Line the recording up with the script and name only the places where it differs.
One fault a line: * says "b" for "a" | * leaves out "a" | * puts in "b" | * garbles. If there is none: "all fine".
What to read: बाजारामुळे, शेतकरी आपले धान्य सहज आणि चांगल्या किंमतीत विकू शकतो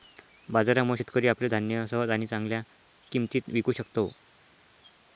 all fine